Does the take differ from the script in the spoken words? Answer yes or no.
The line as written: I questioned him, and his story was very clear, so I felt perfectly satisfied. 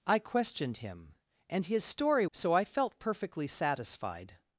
yes